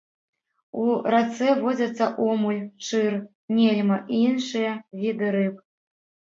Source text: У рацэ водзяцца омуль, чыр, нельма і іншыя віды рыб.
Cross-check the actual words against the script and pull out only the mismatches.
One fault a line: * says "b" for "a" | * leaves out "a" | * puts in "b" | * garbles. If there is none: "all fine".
all fine